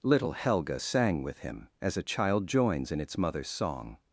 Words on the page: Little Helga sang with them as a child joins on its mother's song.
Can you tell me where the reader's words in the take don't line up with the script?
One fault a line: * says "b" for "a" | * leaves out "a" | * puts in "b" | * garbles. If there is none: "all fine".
* says "him" for "them"
* says "in" for "on"